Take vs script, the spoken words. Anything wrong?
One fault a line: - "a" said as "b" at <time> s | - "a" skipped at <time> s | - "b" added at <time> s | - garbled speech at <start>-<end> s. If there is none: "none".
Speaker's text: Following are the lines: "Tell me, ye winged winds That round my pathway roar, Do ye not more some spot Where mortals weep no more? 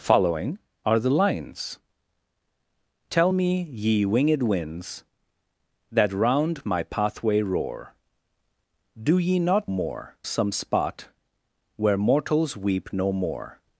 none